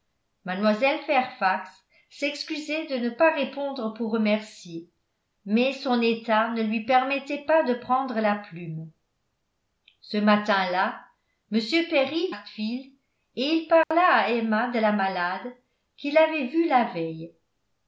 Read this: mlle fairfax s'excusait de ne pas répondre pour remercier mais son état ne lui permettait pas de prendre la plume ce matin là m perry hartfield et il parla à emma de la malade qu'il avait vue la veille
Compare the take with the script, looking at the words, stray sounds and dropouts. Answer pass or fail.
fail